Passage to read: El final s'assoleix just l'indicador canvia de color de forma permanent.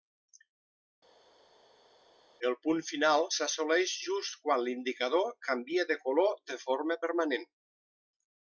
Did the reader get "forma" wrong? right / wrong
right